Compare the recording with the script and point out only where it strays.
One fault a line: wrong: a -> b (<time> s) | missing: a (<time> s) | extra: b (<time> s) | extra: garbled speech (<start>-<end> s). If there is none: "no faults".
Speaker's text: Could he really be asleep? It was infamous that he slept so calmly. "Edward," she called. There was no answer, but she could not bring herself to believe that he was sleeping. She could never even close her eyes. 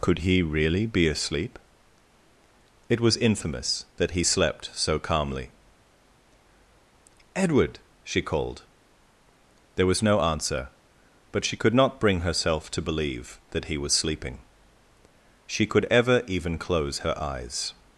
wrong: never -> ever (15.9 s)